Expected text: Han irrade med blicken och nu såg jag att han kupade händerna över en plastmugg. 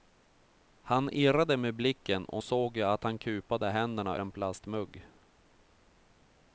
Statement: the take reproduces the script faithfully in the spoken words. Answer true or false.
false